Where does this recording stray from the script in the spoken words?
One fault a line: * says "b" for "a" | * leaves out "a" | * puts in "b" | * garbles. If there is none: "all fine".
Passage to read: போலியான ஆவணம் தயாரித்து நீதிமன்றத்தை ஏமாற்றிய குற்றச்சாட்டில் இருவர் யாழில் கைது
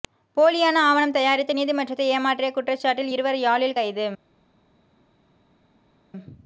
all fine